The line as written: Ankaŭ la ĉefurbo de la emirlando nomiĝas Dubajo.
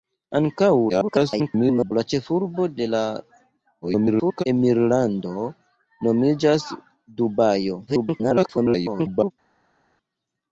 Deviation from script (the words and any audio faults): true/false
true